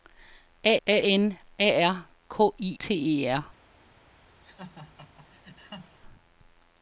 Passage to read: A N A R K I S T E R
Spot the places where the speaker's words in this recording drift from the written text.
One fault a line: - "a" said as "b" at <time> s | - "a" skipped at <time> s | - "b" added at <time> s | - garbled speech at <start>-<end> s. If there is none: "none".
- "a" added at 0.9 s
- "S" skipped at 2.8 s